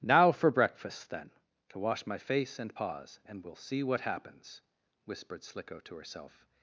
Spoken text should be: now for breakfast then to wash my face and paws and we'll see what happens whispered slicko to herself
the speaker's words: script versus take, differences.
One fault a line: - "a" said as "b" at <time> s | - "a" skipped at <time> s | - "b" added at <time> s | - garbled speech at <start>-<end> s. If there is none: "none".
none